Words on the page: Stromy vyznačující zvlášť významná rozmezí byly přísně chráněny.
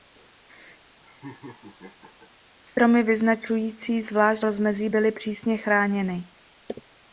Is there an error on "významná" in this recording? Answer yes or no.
yes